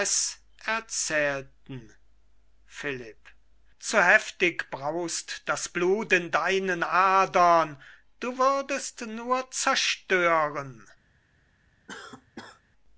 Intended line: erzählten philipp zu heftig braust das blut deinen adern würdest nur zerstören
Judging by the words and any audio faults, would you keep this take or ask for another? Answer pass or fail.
fail